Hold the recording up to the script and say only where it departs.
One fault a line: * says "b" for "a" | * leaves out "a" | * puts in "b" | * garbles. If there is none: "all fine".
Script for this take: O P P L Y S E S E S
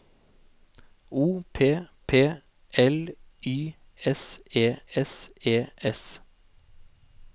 all fine